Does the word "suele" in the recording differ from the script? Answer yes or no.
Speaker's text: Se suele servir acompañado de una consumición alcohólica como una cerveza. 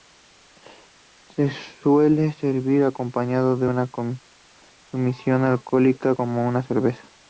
no